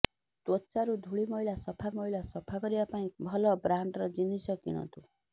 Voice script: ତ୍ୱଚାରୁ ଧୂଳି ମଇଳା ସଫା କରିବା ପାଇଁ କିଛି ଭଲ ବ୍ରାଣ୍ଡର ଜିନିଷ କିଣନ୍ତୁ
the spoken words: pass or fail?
fail